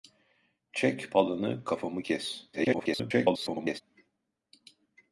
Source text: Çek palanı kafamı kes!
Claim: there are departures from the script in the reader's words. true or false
true